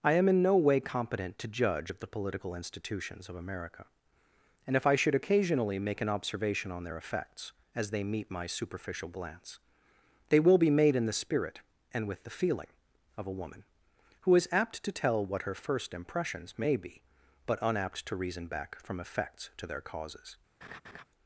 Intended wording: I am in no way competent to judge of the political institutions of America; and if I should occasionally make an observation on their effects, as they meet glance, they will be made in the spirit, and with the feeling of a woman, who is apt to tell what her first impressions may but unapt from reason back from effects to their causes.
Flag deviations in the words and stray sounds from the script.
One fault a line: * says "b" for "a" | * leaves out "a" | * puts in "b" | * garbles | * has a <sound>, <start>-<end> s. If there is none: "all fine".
* puts in "my superficial"
* puts in "be"
* says "to" for "from"
* has a laugh, 20.6-21.0 s